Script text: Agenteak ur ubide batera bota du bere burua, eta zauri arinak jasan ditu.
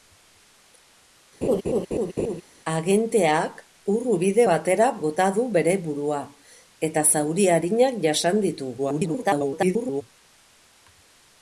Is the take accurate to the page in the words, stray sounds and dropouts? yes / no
no